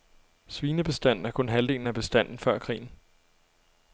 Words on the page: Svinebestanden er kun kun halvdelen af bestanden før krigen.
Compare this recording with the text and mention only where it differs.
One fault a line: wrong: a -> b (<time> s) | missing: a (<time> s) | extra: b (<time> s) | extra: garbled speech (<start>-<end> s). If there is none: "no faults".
missing: kun (1.5 s)